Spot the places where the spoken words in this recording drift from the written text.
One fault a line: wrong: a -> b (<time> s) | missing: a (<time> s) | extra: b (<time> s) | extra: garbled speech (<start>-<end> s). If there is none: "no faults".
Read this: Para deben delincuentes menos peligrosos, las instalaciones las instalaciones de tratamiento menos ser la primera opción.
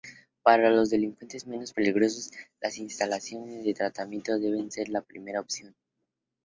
wrong: deben -> los (0.7 s)
missing: las instalaciones (3.6 s)
wrong: menos -> deben (4.4 s)